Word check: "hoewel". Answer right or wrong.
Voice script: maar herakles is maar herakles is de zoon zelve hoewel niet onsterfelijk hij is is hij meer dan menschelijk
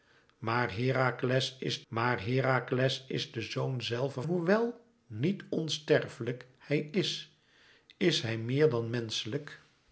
right